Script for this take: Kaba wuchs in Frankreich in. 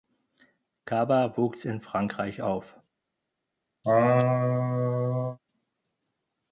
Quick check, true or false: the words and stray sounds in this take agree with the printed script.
false